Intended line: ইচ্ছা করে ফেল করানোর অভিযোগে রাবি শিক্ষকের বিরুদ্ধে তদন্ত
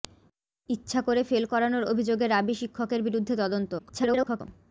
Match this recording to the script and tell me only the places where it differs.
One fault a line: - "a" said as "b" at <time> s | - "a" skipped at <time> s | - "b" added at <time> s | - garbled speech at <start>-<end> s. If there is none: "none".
- garbled speech at 3.8-4.4 s